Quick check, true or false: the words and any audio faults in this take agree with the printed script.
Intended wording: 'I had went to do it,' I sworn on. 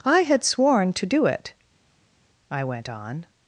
false